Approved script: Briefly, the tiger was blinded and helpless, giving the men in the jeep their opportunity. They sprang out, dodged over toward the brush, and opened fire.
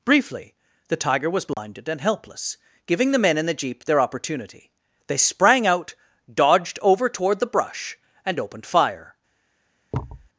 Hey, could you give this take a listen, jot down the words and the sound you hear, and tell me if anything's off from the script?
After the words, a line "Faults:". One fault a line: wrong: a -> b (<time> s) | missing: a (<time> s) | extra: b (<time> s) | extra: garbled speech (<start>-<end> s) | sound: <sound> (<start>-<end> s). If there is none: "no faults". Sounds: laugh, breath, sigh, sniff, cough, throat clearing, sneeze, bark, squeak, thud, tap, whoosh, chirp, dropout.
Briefly, the tiger was blinded and helpless, giving the men in the jeep their opportunity. They sprang out, dodged over toward the brush, and opened fire.
Faults:
sound: dropout (1.5-1.6 s)
sound: thud (9.9-10.3 s)